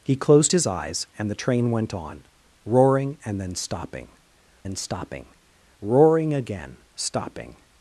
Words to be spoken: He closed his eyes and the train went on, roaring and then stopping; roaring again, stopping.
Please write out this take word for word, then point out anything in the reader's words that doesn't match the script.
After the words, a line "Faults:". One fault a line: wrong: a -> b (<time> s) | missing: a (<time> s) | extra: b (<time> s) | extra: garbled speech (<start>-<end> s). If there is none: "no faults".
He closed his eyes and the train went on, roaring and then stopping then stopping; roaring again, stopping.
Faults:
extra: then stopping (4.6 s)